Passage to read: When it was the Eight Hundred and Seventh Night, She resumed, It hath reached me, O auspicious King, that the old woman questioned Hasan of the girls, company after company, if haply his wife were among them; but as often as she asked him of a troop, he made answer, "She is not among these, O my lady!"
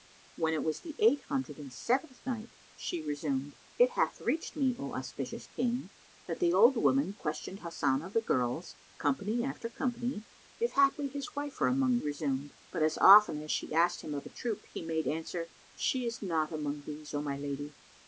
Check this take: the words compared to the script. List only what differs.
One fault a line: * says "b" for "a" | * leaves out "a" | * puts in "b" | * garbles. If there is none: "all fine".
* says "resumed" for "them"